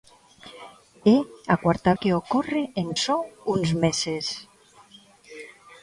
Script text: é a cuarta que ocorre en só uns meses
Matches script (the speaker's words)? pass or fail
pass